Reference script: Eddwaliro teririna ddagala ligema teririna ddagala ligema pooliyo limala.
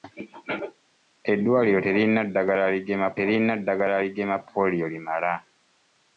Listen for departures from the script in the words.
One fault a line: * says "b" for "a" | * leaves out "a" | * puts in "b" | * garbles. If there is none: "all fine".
all fine